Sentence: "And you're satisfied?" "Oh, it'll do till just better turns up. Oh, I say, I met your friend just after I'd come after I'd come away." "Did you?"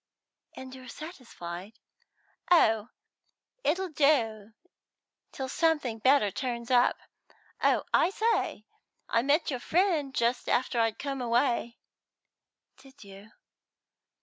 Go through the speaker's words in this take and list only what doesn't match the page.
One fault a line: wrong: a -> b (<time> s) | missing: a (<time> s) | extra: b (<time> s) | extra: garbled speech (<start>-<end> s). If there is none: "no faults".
wrong: just -> something (5.5 s)
missing: after I'd come (11.2 s)